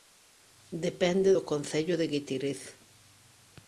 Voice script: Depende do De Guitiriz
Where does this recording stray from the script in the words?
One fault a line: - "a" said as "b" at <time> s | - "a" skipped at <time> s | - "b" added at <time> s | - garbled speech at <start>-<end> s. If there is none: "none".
- "Concello" added at 1.5 s